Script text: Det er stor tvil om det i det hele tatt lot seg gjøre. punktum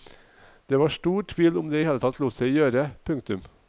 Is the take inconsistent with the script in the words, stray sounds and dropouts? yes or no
yes